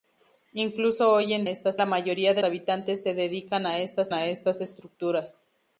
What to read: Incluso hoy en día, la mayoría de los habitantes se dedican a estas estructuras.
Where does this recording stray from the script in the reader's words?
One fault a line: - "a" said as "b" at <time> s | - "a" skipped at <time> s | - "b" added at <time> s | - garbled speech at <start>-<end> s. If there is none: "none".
- "día" said as "estas" at 1.5 s
- "los" skipped at 2.4 s
- "a estas" added at 4.1 s